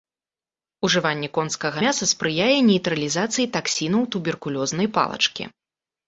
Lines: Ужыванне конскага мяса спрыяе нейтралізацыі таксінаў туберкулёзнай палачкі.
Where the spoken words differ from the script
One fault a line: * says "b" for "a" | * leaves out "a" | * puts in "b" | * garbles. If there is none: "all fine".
all fine